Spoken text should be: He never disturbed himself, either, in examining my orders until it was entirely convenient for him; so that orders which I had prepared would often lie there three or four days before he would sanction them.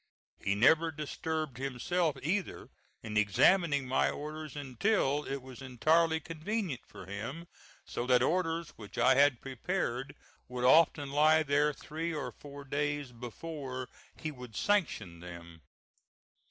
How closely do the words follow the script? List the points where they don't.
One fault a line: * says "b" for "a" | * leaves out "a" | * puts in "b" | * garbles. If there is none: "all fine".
all fine